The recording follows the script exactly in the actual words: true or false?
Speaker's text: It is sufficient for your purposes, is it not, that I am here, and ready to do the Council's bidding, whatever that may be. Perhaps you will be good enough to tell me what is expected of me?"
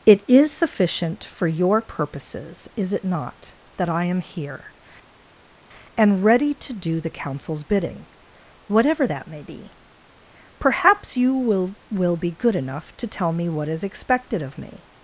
false